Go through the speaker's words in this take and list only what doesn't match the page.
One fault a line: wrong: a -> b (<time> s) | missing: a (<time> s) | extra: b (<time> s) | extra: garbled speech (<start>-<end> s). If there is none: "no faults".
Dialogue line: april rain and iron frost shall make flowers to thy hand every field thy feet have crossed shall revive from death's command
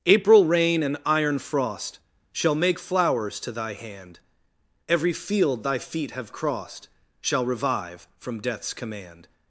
no faults